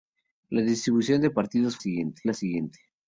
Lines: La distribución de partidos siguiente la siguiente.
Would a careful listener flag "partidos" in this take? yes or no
no